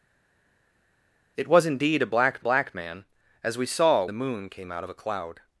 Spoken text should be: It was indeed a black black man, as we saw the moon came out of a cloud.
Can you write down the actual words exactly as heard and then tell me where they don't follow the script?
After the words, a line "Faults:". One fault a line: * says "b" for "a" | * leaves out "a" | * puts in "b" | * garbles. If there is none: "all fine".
It was indeed a black black man, as we saw the moon came out of a cloud.
Faults:
all fine